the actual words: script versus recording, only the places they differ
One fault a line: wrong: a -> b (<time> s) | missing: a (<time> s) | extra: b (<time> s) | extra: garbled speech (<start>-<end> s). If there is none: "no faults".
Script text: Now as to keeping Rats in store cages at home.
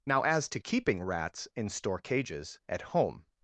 no faults